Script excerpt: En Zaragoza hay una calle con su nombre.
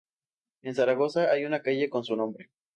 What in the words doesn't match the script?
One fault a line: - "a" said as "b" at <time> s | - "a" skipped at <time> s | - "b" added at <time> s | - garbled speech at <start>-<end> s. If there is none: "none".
none